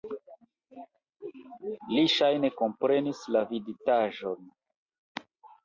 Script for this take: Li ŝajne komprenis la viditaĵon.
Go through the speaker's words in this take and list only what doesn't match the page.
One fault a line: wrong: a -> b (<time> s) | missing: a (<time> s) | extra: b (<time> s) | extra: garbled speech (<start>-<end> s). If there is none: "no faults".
no faults